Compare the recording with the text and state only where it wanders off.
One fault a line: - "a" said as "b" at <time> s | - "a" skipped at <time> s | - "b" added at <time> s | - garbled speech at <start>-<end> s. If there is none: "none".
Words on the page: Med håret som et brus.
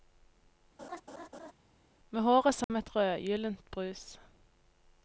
- "rødgyldent" added at 3.0 s